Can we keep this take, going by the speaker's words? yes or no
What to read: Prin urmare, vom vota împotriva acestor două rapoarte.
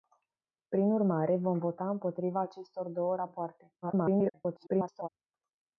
no